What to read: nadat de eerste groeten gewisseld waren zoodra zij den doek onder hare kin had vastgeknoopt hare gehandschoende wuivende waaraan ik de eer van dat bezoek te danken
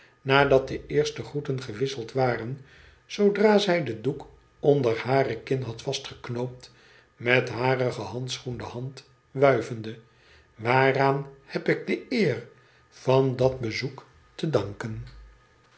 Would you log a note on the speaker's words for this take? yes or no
yes